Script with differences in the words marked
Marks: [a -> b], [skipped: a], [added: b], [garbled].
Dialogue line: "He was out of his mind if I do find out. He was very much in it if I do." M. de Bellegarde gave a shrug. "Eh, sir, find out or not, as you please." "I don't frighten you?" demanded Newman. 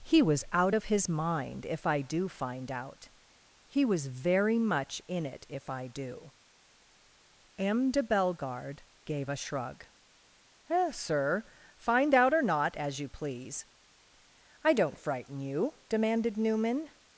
"He was out of his mind if I do find out. He was very much in it if I do." M. de Bellegarde gave a shrug. "Eh, sir, find out or not, as you please." "I don't frighten you?" demanded Newman.